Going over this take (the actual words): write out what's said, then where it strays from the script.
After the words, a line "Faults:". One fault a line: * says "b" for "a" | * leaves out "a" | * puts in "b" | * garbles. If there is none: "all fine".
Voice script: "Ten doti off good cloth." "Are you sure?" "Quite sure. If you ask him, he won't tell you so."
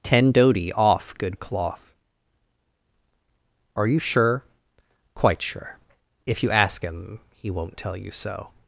"Ten doti off good cloth." "Are you sure?" "Quite sure. If you ask him, he won't tell you so."
Faults:
all fine